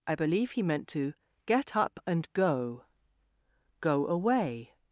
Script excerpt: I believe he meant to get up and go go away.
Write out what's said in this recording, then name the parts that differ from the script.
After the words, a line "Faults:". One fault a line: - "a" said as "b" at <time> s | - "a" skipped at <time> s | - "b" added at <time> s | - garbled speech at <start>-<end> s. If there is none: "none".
I believe he meant to get up and go go away.
Faults:
none